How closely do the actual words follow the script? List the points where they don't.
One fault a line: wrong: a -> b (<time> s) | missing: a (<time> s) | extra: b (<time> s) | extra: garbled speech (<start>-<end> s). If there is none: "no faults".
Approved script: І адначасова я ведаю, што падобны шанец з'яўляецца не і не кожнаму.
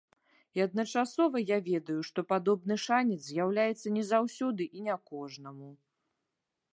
extra: заўсёды (4.1 s)